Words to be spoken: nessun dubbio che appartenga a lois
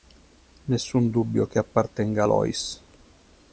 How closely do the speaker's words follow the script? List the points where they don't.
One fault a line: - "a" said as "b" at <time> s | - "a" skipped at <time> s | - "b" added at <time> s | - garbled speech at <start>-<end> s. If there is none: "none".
none